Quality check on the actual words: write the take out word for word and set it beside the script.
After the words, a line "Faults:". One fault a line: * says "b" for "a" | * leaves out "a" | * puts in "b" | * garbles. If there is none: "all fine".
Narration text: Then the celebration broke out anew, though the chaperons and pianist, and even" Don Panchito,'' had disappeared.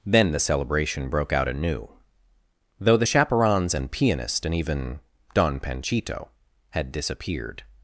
Then the celebration broke out anew, though the chaperons and pianist, and even" Don Panchito,'' had disappeared.
Faults:
all fine